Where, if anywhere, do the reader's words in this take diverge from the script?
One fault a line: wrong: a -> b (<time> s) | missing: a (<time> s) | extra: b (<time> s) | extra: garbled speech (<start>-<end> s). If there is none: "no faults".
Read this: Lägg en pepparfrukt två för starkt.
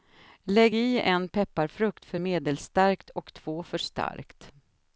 extra: i (0.7 s)
extra: för medelstarkt och (2.0 s)